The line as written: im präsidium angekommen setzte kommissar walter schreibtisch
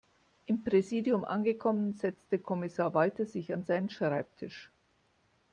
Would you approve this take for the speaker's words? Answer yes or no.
no